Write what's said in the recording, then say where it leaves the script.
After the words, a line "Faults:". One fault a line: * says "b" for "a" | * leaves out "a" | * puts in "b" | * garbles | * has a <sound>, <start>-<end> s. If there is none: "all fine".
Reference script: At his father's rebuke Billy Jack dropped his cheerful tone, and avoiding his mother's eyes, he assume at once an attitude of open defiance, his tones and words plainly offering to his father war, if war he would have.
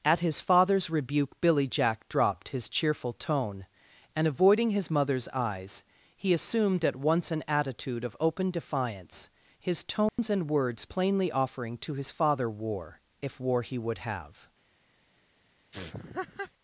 At his father's rebuke Billy Jack dropped his cheerful tone, and avoiding his mother's eyes, he assumed at once an attitude of open defiance, his tones and words plainly offering to his father war, if war he would have.
Faults:
* says "assumed" for "assume"
* has a dropout, 10.1-10.2 s
* has a laugh, 15.7-16.5 s